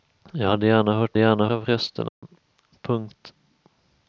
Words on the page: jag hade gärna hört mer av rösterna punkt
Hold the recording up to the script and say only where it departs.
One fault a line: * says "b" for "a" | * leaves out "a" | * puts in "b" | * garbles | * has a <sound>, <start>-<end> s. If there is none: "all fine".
* says "gärna" for "mer"
* has a dropout, 2.1-2.2 s